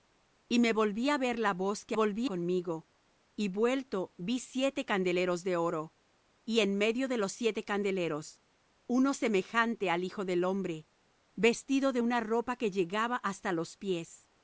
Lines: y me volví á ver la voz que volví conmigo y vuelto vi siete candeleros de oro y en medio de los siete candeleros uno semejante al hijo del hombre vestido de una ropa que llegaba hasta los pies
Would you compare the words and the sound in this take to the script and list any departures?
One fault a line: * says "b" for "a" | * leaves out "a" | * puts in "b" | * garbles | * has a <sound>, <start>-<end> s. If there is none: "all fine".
all fine